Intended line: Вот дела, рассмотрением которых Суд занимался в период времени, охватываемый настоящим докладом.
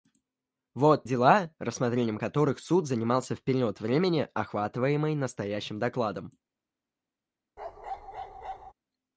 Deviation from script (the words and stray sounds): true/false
true